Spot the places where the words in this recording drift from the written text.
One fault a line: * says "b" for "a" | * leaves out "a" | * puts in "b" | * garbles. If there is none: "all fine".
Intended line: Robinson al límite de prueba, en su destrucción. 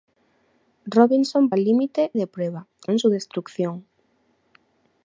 all fine